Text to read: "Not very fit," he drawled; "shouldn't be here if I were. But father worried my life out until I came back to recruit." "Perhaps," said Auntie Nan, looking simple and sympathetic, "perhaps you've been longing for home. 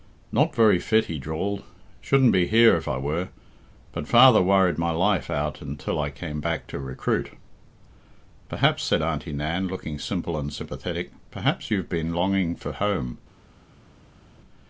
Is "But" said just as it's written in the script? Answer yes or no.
yes